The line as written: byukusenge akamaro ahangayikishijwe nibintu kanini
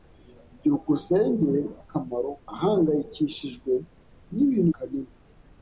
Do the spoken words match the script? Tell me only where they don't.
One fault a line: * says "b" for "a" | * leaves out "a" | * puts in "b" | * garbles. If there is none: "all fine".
all fine